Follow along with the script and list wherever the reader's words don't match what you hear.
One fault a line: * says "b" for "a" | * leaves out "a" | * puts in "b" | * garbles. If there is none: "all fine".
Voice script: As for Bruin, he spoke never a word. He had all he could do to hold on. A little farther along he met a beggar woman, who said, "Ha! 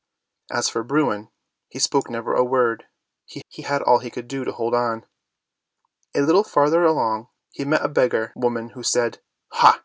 * puts in "he"